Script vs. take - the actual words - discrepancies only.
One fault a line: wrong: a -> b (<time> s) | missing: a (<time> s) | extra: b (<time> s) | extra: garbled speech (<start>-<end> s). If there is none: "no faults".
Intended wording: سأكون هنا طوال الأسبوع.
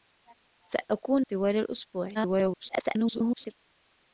missing: هنا (1.2 s)
extra: garbled speech (2.1-3.5 s)